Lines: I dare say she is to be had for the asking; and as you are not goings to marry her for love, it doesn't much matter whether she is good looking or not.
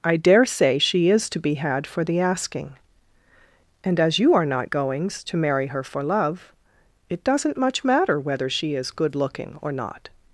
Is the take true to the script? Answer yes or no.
yes